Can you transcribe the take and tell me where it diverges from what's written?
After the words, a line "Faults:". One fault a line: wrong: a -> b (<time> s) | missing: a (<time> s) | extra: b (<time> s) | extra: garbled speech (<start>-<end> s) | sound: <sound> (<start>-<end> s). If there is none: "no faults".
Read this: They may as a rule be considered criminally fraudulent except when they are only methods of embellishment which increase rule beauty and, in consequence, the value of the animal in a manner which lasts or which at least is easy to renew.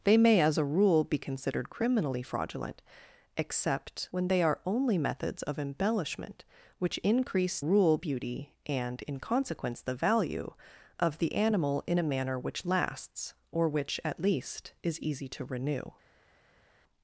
They may as a rule be considered criminally fraudulent except when they are only methods of embellishment which increase rule beauty and, in consequence, the value of the animal in a manner which lasts or which at least is easy to renew.
Faults:
no faults